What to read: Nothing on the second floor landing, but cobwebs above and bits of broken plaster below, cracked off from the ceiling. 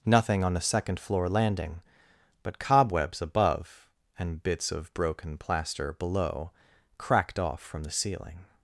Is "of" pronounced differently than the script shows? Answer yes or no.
no